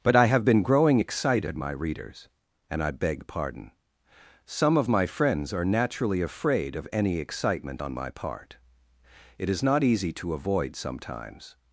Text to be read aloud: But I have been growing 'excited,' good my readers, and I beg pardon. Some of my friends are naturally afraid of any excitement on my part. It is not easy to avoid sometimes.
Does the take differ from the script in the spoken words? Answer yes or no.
yes